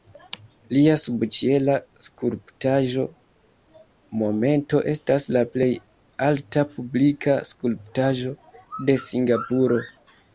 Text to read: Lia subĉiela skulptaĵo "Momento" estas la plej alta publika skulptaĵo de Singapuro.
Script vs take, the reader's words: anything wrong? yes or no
no